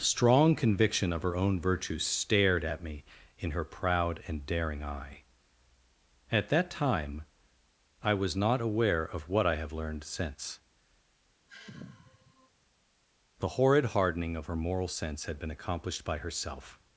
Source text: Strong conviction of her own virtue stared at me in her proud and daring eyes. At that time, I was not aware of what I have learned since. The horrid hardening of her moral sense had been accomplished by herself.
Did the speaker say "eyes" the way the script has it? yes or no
no